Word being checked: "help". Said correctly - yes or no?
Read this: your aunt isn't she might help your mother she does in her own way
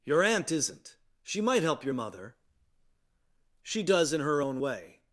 yes